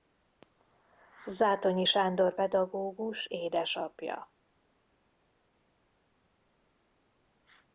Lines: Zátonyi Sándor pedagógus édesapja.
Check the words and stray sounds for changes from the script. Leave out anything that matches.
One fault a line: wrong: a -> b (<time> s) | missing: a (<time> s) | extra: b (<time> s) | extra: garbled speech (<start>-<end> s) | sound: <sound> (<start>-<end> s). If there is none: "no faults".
no faults